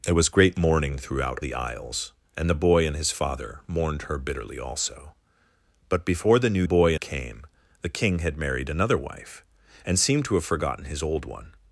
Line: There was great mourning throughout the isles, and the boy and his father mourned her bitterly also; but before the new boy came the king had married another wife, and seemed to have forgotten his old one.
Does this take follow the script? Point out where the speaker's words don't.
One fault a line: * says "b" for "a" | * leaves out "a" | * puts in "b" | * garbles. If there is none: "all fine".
all fine